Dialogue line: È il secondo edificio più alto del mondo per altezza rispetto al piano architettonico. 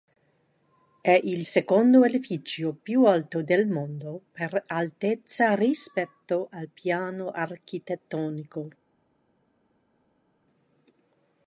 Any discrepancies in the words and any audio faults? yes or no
no